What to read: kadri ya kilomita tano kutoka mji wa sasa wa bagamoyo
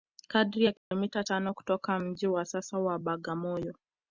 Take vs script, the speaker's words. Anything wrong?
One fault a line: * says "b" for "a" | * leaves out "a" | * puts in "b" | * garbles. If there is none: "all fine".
all fine